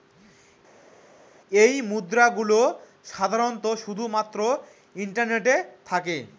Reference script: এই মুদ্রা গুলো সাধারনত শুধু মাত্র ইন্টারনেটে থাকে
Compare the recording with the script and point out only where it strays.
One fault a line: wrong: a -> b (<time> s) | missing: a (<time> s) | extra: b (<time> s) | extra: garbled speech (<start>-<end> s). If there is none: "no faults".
no faults